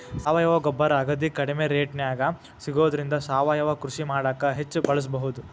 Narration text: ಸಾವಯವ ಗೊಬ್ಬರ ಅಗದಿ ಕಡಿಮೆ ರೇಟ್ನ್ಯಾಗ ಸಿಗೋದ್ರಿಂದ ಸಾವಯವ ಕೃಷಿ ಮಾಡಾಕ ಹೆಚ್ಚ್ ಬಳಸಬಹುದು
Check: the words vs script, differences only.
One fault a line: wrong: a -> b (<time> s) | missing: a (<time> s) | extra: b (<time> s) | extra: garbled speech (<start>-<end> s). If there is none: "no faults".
no faults